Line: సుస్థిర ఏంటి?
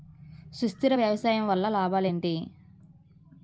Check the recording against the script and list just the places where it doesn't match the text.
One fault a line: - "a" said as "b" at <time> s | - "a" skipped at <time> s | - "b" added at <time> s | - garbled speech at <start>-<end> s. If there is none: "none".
- "వ్యవసాయం వల్ల లాభాలు" added at 0.9 s